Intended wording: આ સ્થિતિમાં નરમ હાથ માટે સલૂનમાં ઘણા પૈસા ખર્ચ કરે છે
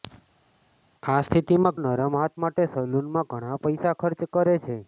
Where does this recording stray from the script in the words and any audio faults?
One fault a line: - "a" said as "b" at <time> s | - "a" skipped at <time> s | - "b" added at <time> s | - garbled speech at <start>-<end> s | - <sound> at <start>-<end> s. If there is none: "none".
none